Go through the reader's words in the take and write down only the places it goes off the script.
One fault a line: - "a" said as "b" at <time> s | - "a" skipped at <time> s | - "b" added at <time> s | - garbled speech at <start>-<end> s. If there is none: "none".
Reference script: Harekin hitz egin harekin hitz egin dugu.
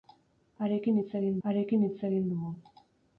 none